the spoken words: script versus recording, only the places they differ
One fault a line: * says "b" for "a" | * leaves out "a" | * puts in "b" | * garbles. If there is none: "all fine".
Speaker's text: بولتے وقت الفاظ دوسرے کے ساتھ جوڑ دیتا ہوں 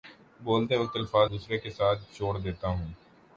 all fine